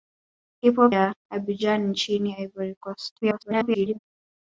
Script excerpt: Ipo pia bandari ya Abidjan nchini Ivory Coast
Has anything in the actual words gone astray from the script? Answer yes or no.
yes